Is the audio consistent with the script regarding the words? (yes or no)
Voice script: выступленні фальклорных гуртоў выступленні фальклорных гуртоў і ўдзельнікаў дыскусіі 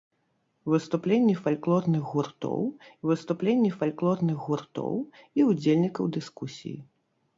yes